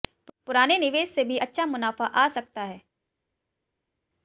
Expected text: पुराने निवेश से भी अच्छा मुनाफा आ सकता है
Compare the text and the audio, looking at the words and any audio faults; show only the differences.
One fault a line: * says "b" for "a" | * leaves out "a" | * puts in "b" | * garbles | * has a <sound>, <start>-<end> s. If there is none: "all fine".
all fine